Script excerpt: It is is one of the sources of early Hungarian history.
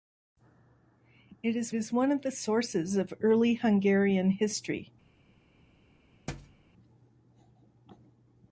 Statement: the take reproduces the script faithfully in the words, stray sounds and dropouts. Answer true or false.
false